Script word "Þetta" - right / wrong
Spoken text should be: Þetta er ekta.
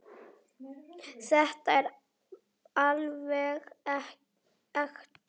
right